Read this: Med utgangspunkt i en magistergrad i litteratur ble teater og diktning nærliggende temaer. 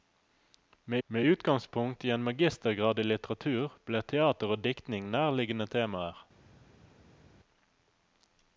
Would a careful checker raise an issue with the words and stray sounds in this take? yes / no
yes